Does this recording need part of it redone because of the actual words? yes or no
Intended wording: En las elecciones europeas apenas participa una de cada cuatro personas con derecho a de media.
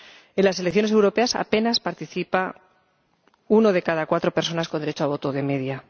yes